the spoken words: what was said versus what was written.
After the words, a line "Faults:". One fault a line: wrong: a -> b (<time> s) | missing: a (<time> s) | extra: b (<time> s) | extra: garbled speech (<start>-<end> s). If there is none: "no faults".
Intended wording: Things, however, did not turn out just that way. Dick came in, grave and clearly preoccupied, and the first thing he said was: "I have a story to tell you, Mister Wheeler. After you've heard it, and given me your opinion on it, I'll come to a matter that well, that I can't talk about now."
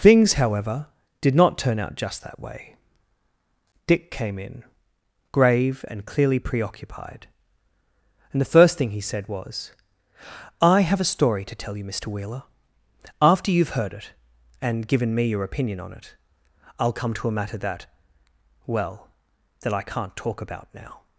Things, however, did not turn out just that way. Dick came in, grave and clearly preoccupied, and the first thing he said was: "I have a story to tell you, Mister Wheeler. After you've heard it, and given me your opinion on it, I'll come to a matter that well, that I can't talk about now."
Faults:
no faults